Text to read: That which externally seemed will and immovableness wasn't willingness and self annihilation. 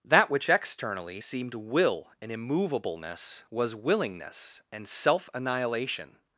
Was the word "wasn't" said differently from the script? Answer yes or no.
yes